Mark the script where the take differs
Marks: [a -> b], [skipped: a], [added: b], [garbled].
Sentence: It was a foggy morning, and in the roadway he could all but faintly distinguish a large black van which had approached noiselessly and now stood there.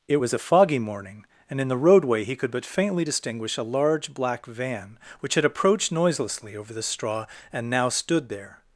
It was a foggy morning, and in the roadway he could [skipped: all] but faintly distinguish a large black van which had approached noiselessly [added: over the straw] and now stood there.